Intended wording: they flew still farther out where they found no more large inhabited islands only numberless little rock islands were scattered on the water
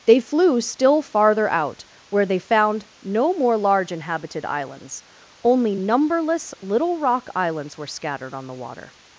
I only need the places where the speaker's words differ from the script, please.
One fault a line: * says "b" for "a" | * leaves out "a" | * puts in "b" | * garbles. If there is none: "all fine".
all fine